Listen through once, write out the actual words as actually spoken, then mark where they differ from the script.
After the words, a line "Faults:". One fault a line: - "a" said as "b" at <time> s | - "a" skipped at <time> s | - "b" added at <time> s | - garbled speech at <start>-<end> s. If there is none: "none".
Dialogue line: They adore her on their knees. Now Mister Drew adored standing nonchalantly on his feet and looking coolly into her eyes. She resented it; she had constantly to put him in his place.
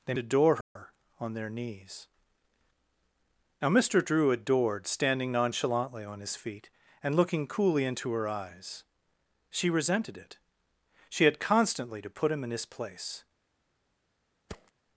They adore her on their knees. Now Mister Drew adored standing nonchalantly on his feet and looking coolly into her eyes. She resented it; she had constantly to put him in his place.
Faults:
none